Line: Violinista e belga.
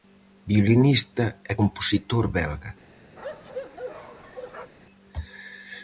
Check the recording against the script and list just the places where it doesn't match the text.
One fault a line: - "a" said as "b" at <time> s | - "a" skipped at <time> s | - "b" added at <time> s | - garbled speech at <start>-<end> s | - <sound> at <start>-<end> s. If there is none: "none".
- "compositor" added at 1.6 s
- bark at 3.2-4.7 s